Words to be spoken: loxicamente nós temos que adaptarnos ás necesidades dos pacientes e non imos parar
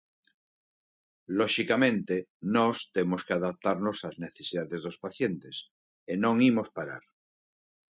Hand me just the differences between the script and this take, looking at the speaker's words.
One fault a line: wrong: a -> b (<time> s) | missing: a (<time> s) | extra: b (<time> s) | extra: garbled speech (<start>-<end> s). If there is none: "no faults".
no faults